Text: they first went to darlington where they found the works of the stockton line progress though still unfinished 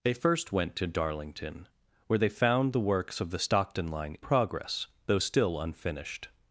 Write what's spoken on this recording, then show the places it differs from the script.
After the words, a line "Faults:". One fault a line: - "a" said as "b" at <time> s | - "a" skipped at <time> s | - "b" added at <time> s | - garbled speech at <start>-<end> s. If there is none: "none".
they first went to darlington where they found the works of the stockton line progress though still unfinished
Faults:
none